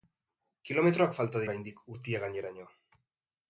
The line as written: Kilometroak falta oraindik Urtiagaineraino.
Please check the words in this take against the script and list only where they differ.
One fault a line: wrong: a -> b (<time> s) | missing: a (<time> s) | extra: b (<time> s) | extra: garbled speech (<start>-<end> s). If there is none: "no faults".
no faults